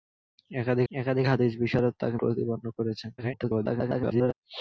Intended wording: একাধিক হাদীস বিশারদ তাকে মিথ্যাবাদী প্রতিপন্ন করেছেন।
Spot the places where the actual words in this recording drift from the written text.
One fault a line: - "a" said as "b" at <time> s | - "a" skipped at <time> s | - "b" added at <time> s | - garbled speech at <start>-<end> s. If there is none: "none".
- "একাধিক" added at 0.9 s
- "মিথ্যাবাদী" skipped at 2.2 s
- garbled speech at 3.2-4.3 s